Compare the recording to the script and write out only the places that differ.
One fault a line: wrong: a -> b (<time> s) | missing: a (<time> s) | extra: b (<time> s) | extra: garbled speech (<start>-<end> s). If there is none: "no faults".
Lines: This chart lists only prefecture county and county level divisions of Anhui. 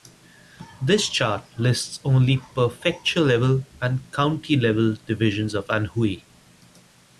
wrong: county -> level (3.2 s)